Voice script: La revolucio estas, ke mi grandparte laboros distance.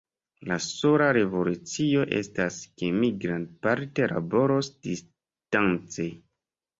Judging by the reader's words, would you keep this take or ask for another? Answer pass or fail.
fail